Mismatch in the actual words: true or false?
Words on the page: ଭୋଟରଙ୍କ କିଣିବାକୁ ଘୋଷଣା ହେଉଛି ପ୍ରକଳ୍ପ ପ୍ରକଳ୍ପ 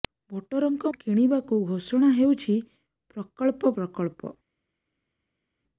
false